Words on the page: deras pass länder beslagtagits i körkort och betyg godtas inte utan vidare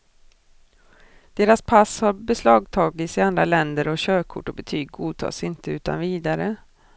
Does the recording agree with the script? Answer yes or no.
no